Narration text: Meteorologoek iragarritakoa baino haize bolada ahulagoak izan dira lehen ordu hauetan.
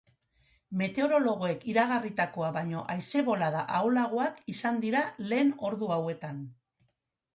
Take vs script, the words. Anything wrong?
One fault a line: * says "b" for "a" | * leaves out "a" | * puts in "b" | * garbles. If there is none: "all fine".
all fine